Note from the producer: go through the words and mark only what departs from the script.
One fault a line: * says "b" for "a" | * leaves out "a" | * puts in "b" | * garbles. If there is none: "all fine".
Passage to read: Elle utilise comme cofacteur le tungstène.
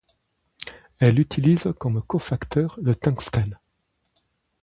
all fine